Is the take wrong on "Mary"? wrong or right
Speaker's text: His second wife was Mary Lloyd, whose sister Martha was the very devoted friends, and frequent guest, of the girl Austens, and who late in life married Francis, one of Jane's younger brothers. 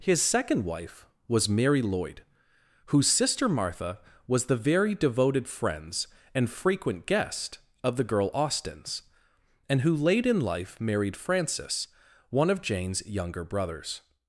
right